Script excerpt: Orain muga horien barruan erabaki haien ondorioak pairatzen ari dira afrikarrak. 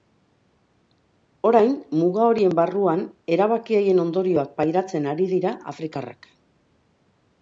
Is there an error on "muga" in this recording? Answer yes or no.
no